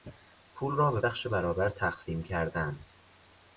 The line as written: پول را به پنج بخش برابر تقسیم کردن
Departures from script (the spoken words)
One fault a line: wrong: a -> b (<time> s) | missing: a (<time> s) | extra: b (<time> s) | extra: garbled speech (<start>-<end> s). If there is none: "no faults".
missing: پنج (1.0 s)